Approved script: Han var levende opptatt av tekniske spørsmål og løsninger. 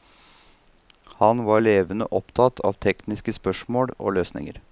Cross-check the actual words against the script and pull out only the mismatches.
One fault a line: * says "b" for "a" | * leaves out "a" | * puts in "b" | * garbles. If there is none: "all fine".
all fine